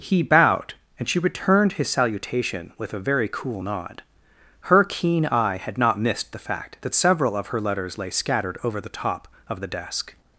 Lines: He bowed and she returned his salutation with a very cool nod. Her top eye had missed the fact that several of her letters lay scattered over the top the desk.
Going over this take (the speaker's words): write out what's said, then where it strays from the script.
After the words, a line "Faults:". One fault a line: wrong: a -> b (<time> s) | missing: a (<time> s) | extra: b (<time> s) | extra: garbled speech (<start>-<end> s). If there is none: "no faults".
He bowed and she returned his salutation with a very cool nod. Her keen eye had not missed the fact that several of her letters lay scattered over the top of the desk.
Faults:
wrong: top -> keen (4.8 s)
extra: not (5.8 s)
extra: of (9.5 s)